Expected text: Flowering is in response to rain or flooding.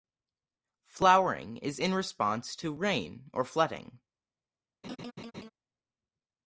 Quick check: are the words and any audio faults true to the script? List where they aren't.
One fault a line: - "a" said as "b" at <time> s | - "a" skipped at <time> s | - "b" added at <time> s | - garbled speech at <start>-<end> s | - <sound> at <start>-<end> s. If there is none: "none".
- laugh at 4.8-5.5 s